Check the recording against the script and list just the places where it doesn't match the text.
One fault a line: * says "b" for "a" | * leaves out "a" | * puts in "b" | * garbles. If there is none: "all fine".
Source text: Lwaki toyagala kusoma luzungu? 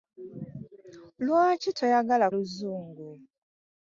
* leaves out "kusoma"